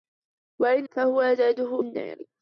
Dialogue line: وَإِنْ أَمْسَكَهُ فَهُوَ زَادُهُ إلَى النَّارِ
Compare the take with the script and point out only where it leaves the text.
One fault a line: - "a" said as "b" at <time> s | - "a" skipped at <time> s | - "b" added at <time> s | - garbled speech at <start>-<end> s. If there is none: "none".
- "أَمْسَكَهُ" skipped at 0.9 s
- "إلَى" skipped at 1.8 s